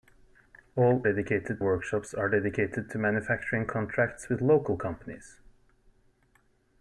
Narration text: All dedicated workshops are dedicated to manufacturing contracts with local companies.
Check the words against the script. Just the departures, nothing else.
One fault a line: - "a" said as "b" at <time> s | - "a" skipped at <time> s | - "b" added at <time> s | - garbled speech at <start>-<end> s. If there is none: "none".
none